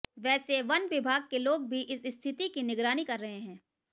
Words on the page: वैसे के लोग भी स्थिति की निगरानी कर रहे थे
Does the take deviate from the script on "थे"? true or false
true